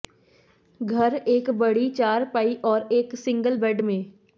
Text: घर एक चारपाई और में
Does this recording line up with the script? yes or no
no